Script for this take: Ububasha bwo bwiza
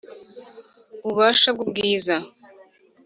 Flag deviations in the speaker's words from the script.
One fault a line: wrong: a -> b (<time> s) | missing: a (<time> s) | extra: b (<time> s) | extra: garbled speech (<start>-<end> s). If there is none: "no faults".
no faults